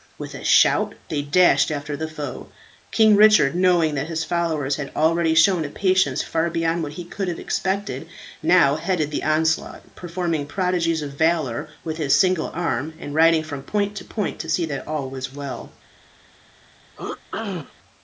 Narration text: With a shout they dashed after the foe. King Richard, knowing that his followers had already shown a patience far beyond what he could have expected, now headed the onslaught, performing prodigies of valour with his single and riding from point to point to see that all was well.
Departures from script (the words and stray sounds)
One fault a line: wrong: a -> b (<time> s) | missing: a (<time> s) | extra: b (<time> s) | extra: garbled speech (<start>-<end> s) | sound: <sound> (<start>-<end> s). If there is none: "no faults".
extra: arm (12.5 s)
sound: throat clearing (17.0-17.7 s)